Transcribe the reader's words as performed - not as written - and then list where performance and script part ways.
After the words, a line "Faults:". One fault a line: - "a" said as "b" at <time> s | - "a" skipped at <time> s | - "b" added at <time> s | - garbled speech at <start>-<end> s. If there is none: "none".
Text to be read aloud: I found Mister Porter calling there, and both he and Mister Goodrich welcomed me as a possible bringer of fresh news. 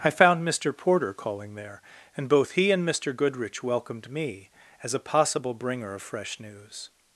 I found Mister Porter calling there, and both he and Mister Goodrich welcomed me as a possible bringer of fresh news.
Faults:
none